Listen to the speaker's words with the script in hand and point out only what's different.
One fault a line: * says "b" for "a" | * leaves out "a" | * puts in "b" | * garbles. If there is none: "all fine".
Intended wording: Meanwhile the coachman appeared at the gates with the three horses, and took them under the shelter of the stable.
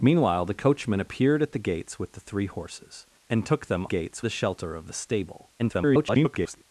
* says "gates" for "under"
* garbles